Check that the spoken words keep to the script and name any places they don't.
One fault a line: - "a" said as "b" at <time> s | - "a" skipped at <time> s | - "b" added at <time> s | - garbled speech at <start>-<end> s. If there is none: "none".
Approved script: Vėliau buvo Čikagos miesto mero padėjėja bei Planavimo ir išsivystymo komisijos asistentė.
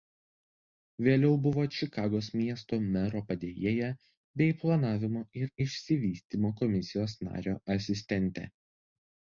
- "nario" added at 7.3 s